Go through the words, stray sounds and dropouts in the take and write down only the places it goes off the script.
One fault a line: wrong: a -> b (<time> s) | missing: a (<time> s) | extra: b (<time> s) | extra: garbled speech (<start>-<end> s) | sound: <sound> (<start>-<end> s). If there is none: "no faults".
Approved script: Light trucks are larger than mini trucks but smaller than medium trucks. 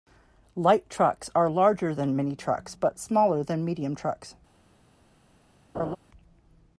sound: laugh (5.7-6.0 s)